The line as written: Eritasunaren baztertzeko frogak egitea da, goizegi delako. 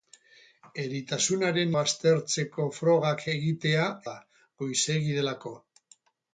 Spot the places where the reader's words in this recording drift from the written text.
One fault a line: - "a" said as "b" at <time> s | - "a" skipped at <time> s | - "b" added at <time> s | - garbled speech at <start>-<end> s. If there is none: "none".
none